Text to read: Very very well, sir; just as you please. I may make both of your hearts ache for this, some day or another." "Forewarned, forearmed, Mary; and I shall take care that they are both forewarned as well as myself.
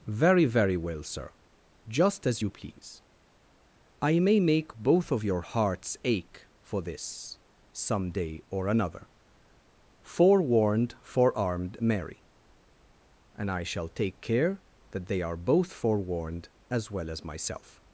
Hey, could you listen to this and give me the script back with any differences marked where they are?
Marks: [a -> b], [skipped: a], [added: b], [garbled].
Very very well, sir; just as you please. I may make both of your hearts ache for this, some day or another." "Forewarned, forearmed, Mary; and I shall take care that they are both forewarned as well as myself.